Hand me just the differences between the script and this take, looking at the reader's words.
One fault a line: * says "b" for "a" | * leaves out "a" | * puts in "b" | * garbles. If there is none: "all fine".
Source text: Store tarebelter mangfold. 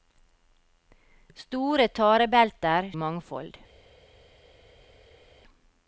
all fine